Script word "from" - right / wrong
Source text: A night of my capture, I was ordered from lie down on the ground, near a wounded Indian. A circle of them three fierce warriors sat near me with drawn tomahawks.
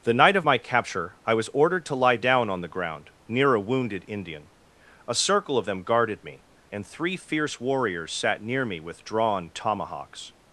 wrong